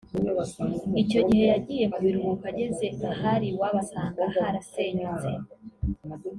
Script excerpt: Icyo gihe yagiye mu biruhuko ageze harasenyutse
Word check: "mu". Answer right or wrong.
right